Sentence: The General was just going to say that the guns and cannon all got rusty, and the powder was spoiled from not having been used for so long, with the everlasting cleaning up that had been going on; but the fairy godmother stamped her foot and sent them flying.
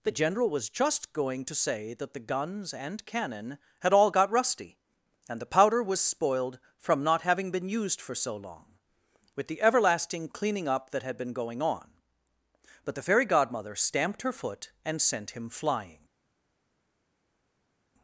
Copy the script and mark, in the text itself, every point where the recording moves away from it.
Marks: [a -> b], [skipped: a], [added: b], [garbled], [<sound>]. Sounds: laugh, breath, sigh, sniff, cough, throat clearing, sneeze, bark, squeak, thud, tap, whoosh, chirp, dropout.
The General was just going to say that the guns and cannon [added: had] all got rusty, and the powder was spoiled from not having been used for so long, with the everlasting cleaning up that had been going on; but the fairy godmother stamped her foot and sent [them -> him] flying.